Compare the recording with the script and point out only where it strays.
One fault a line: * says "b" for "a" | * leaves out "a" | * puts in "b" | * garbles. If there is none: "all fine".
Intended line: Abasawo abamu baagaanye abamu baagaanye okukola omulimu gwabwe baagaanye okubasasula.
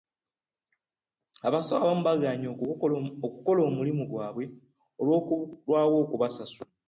* leaves out "abamu baagaanye"
* says "olw'okulwawo" for "baagaanye"